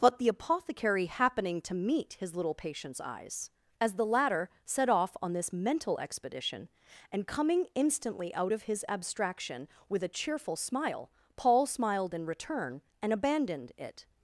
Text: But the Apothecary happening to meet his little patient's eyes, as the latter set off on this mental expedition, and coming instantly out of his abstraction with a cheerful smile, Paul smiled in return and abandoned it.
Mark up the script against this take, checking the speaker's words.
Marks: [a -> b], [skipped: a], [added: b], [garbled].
But the Apothecary happening to meet his little patient's eyes, as the latter set off on this mental expedition, and coming instantly out of his abstraction with a cheerful smile, Paul smiled in return and abandoned it.